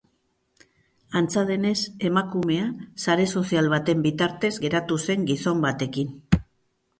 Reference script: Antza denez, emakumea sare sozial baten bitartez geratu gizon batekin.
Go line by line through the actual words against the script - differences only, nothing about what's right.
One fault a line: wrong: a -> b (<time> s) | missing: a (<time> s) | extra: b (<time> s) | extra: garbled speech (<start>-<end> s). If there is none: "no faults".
extra: zen (5.1 s)